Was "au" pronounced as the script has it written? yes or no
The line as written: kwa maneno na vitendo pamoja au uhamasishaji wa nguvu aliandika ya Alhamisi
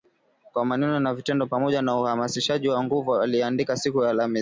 no